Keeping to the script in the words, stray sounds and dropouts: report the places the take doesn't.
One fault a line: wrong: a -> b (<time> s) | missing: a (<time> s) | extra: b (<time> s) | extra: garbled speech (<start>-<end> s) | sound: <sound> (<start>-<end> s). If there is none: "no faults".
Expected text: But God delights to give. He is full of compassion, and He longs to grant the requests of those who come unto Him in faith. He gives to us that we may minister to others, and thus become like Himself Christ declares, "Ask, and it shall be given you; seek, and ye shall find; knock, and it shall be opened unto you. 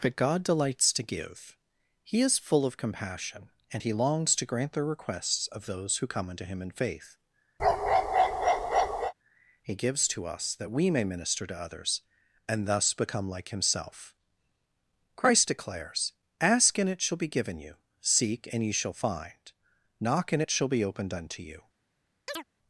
sound: bark (7.6-9.1 s)
sound: chirp (22.3-22.4 s)